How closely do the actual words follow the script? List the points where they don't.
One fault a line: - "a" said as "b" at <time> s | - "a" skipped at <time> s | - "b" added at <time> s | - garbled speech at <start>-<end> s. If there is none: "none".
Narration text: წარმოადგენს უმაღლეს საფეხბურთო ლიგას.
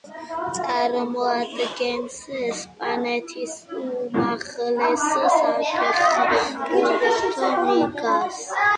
- "ესპანეთის" added at 2.5 s